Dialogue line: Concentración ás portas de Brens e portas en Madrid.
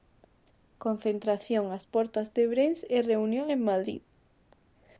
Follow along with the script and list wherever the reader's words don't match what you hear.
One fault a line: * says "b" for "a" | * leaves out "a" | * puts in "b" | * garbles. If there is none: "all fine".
* says "reunión" for "portas"